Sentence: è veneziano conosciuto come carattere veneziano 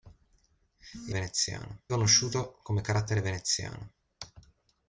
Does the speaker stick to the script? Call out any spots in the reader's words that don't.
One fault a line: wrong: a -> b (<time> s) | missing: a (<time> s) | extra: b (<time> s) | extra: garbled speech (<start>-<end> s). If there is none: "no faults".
no faults